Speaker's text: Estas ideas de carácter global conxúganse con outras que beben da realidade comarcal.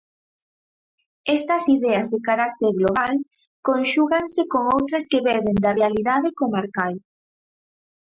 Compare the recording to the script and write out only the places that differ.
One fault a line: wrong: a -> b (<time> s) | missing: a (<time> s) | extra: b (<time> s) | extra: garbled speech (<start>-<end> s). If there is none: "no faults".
no faults